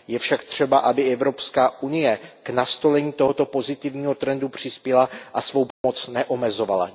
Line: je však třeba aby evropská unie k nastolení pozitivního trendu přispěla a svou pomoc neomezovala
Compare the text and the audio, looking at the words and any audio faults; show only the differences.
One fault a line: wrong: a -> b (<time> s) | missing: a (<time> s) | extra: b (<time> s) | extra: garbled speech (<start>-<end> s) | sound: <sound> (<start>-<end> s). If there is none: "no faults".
extra: tohoto (3.1 s)
sound: dropout (5.7-5.8 s)